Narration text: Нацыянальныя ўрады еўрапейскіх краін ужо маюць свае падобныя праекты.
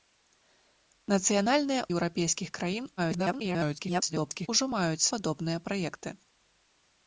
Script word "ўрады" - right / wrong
wrong